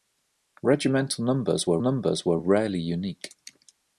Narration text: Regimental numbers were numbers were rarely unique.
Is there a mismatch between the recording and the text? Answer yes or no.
no